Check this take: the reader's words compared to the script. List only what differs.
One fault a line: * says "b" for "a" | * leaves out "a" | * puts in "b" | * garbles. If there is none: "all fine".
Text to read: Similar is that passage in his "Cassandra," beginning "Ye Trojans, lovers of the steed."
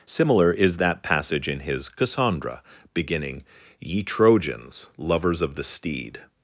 all fine